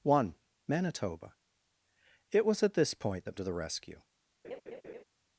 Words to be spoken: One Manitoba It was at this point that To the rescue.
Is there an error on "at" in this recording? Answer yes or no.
no